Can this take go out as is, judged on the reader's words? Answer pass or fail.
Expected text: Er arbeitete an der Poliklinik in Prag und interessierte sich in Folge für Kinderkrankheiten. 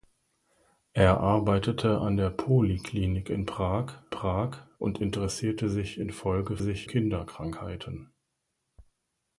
fail